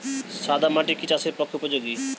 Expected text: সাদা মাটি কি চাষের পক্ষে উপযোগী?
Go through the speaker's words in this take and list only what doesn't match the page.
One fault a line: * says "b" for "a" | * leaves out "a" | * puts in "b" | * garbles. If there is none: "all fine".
all fine